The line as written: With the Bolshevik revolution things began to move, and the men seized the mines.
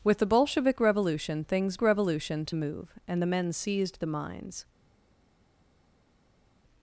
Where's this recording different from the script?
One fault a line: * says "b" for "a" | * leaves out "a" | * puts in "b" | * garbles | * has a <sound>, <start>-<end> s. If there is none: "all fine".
* says "revolution" for "began"